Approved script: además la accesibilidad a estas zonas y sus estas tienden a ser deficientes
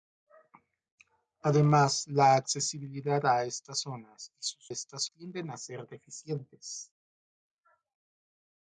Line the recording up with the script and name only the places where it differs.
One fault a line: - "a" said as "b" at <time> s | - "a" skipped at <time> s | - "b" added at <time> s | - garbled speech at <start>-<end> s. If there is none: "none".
none